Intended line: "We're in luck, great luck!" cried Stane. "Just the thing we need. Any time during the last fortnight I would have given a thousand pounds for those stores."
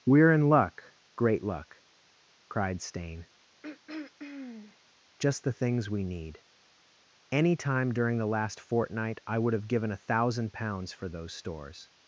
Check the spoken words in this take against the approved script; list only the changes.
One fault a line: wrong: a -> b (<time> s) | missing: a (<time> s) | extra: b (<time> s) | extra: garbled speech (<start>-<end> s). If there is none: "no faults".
wrong: thing -> things (5.5 s)